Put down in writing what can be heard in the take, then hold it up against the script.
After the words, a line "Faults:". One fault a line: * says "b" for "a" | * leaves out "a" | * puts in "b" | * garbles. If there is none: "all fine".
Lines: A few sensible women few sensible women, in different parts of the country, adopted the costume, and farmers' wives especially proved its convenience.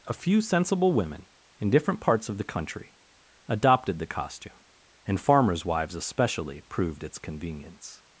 A few sensible women, in different parts of the country, adopted the costume, and farmers' wives especially proved its convenience.
Faults:
* leaves out "few sensible women"